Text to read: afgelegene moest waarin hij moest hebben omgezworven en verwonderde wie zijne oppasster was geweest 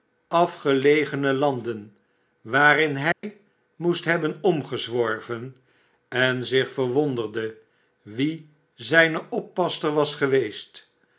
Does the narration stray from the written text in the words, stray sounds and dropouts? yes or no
yes